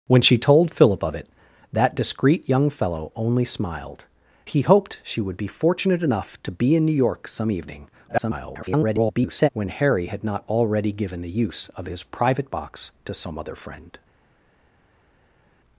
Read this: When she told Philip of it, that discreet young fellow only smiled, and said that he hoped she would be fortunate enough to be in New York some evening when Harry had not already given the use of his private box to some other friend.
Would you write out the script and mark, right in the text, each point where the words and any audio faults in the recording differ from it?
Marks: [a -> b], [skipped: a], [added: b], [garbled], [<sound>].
When she told Philip of it, that discreet young fellow only smiled, [skipped: and said that] he hoped she would be fortunate enough to be in New York some evening [garbled] when Harry had not already given the use of his private box to some other friend.